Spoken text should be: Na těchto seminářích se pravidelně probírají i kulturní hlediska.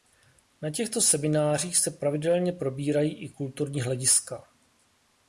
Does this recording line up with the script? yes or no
yes